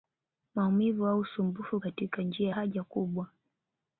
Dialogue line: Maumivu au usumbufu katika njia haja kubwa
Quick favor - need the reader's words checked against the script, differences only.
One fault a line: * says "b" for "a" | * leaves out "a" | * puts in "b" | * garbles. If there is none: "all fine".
all fine